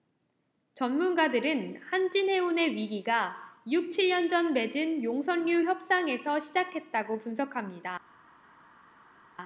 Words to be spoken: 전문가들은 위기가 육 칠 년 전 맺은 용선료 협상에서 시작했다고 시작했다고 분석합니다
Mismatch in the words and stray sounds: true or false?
true